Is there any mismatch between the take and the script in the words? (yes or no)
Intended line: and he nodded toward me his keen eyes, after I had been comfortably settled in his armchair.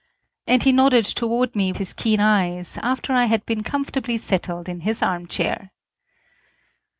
no